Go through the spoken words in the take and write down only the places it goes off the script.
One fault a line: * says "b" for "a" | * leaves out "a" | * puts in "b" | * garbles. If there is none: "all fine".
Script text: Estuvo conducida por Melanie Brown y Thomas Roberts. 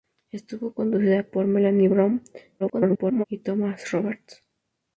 * garbles